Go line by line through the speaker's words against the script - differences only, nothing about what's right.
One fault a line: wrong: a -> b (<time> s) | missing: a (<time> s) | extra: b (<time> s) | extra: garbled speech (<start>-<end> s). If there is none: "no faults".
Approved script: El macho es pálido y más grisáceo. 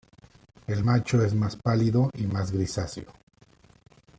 extra: más (1.3 s)